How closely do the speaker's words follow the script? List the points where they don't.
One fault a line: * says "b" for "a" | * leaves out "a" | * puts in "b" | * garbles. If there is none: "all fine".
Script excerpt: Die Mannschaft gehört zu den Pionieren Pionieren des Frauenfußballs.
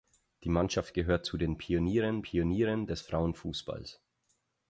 all fine